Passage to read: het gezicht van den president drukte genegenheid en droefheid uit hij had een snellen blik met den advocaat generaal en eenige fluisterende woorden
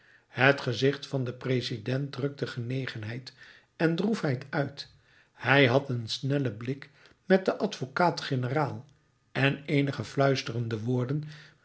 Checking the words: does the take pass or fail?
pass